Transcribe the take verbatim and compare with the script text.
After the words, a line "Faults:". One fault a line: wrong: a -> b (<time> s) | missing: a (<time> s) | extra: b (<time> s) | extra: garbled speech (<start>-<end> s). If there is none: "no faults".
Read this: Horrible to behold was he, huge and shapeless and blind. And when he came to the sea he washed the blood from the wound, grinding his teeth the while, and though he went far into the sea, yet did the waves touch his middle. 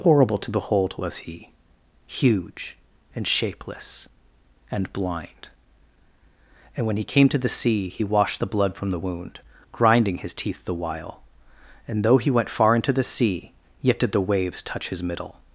Horrible to behold was he, huge and shapeless and blind. And when he came to the sea he washed the blood from the wound, grinding his teeth the while, and though he went far into the sea, yet did the waves touch his middle.
Faults:
no faults